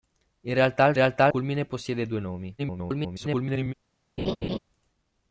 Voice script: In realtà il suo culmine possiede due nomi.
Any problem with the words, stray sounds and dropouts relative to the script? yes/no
yes